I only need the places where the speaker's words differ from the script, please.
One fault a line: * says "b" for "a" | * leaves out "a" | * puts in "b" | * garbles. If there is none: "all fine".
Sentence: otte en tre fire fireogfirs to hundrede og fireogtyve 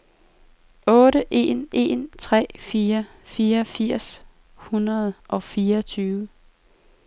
* puts in "en"
* leaves out "to"